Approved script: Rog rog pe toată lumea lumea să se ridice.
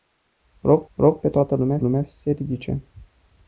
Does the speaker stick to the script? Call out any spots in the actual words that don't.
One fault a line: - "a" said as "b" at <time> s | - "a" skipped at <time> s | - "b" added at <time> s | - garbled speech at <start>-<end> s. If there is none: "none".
none